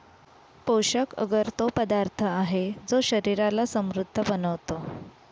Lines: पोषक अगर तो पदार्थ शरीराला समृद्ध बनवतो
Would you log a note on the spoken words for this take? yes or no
yes